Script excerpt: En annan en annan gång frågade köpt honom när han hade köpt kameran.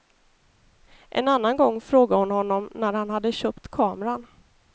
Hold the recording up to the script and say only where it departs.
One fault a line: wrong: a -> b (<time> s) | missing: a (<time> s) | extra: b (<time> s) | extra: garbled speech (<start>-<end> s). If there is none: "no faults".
missing: en annan (1.6 s)
wrong: köpt -> hon (2.2 s)